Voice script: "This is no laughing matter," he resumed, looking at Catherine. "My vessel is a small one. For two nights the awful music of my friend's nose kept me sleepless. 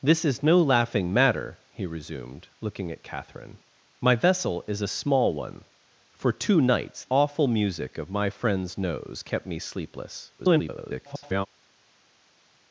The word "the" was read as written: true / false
false